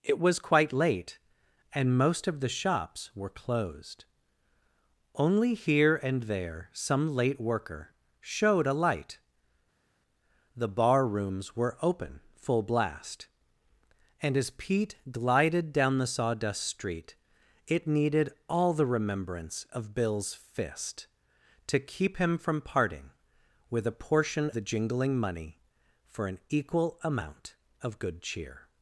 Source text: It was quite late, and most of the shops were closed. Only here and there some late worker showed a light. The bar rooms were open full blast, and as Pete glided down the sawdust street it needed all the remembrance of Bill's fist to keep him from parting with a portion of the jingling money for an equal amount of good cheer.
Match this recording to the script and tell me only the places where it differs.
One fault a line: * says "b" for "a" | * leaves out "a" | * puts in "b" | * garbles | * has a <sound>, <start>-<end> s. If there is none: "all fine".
* leaves out "of"